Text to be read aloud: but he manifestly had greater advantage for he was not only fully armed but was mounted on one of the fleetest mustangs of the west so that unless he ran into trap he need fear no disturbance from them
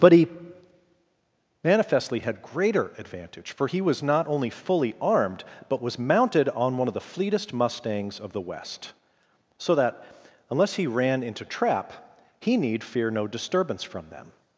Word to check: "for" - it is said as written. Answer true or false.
true